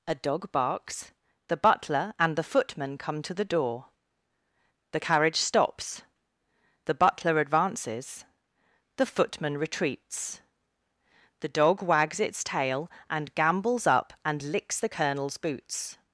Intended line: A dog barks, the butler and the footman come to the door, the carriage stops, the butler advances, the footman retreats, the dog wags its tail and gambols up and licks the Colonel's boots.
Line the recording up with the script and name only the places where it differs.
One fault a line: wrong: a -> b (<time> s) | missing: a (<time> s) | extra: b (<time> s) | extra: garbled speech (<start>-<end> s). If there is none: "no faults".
no faults